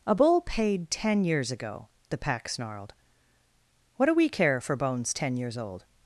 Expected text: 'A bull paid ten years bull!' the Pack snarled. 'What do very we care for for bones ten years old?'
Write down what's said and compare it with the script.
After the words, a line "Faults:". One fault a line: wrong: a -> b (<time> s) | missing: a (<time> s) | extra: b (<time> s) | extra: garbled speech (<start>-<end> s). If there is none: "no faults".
'A bull paid ten years ago!' the Pack snarled. 'What do we care for bones ten years old?'
Faults:
wrong: bull -> ago (1.5 s)
missing: very (4.1 s)
missing: for (4.8 s)